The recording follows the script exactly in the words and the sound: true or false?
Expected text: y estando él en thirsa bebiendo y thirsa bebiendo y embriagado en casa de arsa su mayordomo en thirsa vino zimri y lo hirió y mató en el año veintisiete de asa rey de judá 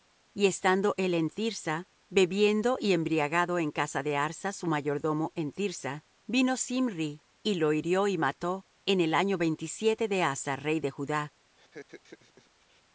false